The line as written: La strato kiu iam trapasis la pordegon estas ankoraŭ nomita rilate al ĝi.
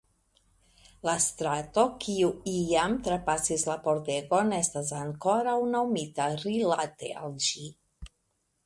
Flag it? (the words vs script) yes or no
no